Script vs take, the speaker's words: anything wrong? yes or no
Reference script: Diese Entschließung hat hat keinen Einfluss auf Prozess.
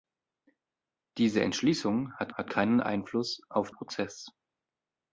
no